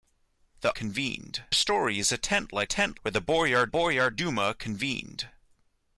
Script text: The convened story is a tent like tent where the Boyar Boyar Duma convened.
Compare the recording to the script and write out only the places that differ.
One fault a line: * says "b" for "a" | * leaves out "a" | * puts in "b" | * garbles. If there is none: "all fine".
all fine